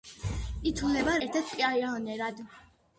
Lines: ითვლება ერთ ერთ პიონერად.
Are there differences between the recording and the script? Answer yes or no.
no